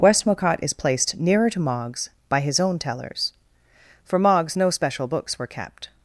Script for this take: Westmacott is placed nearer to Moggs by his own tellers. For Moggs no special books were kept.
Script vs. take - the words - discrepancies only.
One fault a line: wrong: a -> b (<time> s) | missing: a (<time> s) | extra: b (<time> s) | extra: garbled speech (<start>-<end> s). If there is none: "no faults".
no faults